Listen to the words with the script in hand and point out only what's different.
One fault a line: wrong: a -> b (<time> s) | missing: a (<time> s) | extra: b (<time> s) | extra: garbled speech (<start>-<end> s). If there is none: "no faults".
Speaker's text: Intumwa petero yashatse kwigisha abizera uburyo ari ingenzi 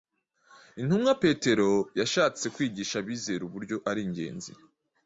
no faults